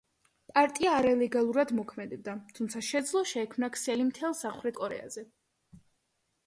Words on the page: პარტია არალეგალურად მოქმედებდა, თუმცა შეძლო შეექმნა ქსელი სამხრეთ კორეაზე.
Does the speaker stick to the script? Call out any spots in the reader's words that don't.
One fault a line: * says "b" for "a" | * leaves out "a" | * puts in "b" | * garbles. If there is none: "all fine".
* puts in "მთელ"